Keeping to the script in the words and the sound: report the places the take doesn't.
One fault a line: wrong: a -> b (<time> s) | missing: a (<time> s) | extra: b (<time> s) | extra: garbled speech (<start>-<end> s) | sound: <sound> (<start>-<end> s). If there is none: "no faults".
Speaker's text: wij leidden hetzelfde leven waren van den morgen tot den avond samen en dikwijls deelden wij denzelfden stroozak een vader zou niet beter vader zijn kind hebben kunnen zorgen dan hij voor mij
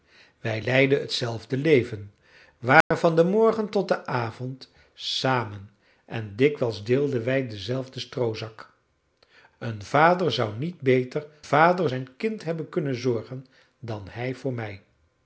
sound: dropout (2.8-2.9 s)